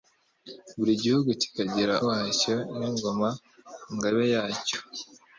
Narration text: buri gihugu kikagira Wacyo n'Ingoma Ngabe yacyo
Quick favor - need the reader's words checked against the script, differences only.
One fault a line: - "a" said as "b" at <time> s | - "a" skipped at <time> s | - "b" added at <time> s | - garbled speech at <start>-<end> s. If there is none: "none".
none